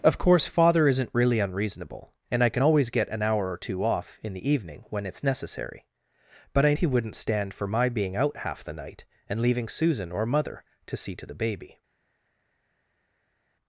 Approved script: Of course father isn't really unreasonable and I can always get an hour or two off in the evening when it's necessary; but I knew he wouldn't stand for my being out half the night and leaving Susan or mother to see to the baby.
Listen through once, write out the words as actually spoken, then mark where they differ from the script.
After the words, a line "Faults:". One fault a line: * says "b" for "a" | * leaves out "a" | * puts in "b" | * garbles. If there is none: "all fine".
Of course father isn't really unreasonable and I can always get an hour or two off in the evening when it's necessary; but I he wouldn't stand for my being out half the night and leaving Susan or mother to see to the baby.
Faults:
* leaves out "knew"